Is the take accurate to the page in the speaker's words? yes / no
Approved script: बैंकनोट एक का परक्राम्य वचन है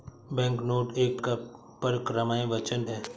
yes